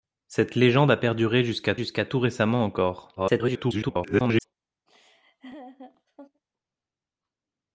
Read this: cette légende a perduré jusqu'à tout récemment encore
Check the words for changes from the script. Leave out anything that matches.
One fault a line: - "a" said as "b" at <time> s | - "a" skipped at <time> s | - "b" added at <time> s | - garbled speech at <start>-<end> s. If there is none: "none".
- "jusqu'à" added at 1.7 s
- garbled speech at 3.2-4.4 s